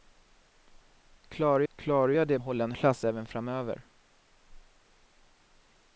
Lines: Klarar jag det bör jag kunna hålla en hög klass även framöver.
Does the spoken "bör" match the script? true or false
false